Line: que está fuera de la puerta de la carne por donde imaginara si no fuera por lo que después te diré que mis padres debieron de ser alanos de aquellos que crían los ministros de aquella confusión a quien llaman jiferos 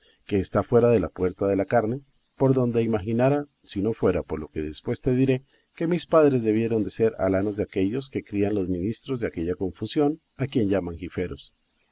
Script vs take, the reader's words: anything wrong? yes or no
no